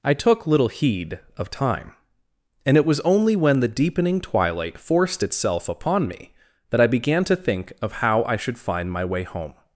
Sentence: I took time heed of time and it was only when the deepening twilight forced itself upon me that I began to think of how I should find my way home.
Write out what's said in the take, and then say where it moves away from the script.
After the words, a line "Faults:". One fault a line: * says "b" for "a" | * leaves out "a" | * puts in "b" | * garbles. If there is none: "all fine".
I took little heed of time and it was only when the deepening twilight forced itself upon me that I began to think of how I should find my way home.
Faults:
* says "little" for "time"